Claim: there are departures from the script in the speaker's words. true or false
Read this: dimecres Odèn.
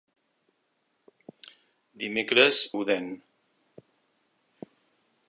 false